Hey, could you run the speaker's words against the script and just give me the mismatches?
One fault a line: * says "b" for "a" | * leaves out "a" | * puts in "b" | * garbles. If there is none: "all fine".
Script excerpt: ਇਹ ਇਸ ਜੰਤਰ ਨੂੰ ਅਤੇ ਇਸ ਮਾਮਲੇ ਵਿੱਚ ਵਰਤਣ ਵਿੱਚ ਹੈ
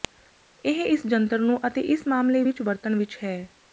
all fine